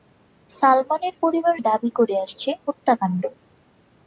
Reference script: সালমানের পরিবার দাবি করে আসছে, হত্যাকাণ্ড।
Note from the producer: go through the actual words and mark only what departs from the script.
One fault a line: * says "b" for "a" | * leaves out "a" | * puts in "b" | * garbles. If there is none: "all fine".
all fine